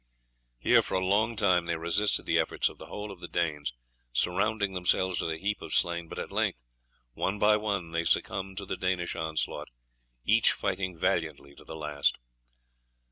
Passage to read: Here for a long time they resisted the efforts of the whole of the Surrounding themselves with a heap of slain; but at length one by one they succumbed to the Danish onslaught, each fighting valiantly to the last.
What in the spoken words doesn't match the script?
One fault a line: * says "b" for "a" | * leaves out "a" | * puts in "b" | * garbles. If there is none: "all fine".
* puts in "Danes"